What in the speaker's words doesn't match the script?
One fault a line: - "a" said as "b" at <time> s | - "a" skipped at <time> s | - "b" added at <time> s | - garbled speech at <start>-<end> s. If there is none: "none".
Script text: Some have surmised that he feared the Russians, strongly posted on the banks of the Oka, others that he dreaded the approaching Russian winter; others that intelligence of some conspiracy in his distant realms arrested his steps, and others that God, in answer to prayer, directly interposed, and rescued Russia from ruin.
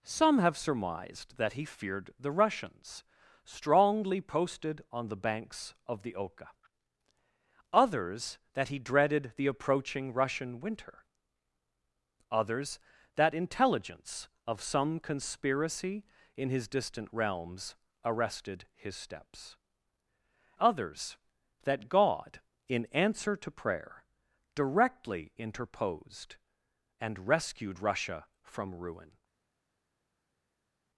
- "and" skipped at 19.6 s